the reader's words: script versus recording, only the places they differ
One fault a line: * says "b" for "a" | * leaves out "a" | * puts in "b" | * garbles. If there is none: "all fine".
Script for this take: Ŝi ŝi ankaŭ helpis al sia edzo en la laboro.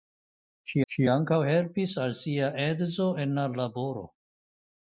all fine